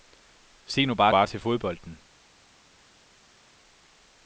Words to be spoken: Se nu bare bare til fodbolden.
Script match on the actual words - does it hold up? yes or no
yes